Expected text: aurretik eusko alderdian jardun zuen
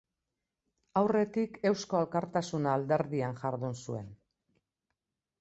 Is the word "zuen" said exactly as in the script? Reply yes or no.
yes